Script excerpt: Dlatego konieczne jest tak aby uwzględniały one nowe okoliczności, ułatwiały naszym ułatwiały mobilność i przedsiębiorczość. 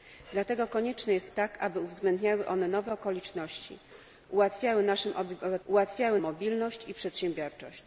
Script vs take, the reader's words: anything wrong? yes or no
no